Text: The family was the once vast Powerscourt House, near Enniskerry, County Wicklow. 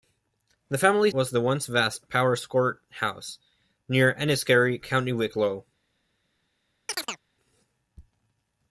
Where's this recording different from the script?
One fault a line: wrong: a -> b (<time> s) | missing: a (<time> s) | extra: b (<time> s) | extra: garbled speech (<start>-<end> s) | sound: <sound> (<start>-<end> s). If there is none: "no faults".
sound: chirp (6.9-7.2 s)